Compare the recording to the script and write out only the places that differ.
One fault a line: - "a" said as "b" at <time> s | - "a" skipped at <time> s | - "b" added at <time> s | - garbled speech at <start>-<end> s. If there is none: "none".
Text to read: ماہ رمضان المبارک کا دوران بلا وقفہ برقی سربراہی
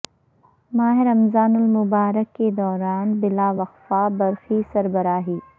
- "کا" said as "کے" at 2.4 s